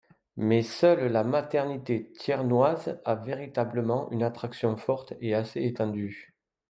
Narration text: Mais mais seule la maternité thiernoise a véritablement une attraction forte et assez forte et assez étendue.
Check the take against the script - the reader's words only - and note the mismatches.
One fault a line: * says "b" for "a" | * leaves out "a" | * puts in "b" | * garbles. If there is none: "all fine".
* leaves out "mais"
* leaves out "forte et assez"